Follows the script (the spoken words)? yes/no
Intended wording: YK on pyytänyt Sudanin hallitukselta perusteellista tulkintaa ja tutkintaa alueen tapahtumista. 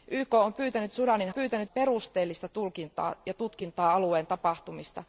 no